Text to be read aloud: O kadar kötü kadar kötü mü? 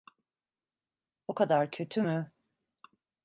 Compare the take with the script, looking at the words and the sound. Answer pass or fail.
fail